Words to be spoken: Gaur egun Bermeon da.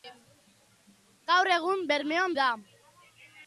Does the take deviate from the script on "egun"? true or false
false